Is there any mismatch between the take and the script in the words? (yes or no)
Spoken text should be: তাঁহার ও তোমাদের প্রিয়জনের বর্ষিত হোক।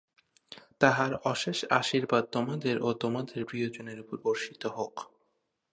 yes